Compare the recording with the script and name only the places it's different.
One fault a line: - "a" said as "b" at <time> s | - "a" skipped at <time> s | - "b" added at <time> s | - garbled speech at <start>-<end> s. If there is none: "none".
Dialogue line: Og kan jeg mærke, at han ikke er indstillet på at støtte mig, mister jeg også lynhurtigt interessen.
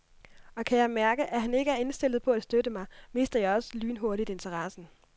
none